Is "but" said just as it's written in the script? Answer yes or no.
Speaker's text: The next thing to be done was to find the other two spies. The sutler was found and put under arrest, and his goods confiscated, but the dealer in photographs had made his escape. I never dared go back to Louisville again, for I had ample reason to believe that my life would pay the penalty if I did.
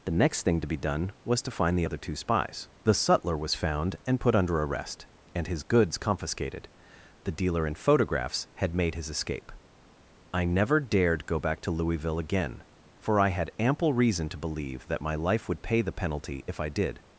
no